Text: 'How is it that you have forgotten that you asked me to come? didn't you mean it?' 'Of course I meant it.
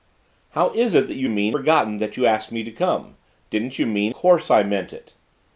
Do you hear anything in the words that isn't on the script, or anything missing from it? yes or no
yes